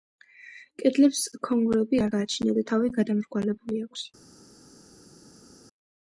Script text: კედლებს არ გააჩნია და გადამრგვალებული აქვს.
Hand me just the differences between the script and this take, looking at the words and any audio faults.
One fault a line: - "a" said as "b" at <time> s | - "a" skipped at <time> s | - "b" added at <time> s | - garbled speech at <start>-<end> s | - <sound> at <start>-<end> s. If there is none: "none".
- "ქონგურები" added at 1.5 s
- "თავი" added at 2.7 s